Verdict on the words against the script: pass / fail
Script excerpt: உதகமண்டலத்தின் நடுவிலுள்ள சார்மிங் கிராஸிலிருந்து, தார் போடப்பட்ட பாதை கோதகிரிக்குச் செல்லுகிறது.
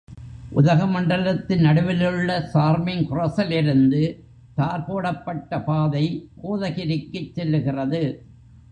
pass